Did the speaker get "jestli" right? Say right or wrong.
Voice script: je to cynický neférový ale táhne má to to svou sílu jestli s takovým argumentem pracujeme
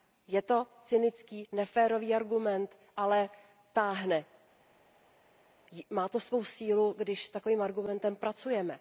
wrong